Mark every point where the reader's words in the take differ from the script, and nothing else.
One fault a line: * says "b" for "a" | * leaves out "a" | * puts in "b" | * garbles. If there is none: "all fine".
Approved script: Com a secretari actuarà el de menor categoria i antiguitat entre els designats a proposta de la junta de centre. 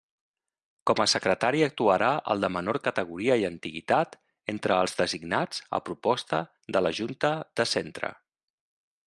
all fine